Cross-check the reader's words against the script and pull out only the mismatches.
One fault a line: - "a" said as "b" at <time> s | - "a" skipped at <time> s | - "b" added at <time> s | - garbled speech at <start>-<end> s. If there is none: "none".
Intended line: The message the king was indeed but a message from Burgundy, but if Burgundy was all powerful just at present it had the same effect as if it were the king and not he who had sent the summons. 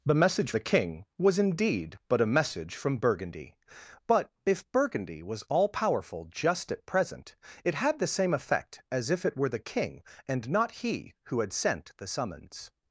none